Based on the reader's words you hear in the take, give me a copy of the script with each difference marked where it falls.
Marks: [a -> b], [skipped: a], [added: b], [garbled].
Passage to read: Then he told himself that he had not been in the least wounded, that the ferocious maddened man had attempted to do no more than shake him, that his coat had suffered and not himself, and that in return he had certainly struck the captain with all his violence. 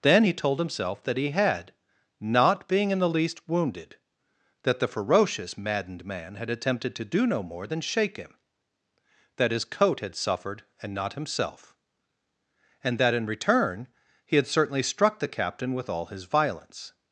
Then he told himself that he had not [been -> being] in the least wounded, that the ferocious maddened man had attempted to do no more than shake him, that his coat had suffered and not himself, and that in return he had certainly struck the captain with all his violence.